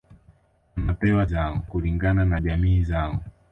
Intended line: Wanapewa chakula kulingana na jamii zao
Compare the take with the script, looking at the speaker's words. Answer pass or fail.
fail